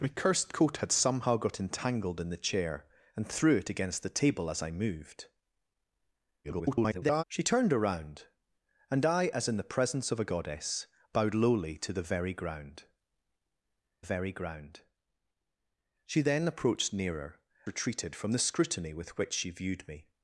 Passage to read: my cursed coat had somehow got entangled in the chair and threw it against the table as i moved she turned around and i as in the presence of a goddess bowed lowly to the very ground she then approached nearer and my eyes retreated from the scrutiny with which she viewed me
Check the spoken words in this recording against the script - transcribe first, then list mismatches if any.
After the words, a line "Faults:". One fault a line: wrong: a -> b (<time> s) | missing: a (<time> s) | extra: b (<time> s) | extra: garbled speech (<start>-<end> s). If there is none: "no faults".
my cursed coat had somehow got entangled in the chair and threw it against the table as i moved [garbled] she turned around and i as in the presence of a goddess bowed lowly to the very ground very ground she then approached nearer retreated from the scrutiny with which she viewed me
Faults:
extra: garbled speech (6.4-7.2 s)
extra: very ground (14.0 s)
missing: and my eyes (17.4 s)